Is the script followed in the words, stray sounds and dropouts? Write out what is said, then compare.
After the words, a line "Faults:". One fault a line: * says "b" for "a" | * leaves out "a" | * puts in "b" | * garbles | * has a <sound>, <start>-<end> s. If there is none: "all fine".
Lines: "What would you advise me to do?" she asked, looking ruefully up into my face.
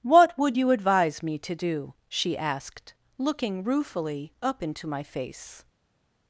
"What would you advise me to do?" she asked, looking ruefully up into my face.
Faults:
all fine